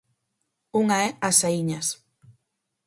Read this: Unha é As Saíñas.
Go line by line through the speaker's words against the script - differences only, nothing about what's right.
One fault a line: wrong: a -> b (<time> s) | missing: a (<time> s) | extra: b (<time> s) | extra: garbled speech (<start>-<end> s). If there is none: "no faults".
no faults